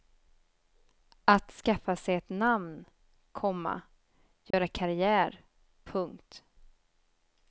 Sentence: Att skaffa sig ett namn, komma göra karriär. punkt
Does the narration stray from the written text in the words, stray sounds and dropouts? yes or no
yes